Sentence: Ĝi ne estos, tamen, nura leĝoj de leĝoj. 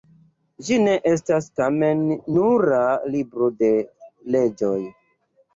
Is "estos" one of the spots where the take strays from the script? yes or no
yes